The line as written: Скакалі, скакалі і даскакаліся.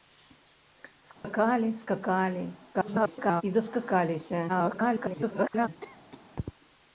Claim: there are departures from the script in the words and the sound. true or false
true